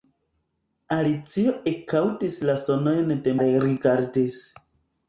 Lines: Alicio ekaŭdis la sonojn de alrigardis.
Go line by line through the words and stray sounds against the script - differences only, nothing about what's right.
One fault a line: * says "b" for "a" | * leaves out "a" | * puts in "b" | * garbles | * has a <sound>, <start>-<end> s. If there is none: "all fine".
all fine